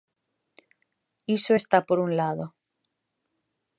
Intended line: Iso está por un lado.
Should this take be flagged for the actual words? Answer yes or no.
no